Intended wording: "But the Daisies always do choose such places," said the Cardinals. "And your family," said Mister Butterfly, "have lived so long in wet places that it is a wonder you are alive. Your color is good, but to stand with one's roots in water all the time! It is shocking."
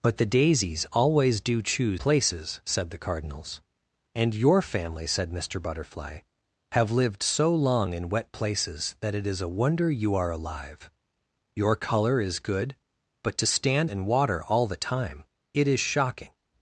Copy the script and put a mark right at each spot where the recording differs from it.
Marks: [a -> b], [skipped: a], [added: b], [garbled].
"But the Daisies always do choose [skipped: such] places," said the Cardinals. "And your family," said Mister Butterfly, "have lived so long in wet places that it is a wonder you are alive. Your color is good, but to stand [skipped: with one's roots] in water all the time! It is shocking."